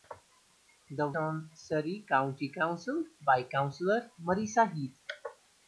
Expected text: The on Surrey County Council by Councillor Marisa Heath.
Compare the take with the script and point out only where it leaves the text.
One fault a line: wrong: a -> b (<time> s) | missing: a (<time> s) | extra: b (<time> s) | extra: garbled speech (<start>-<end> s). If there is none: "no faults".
no faults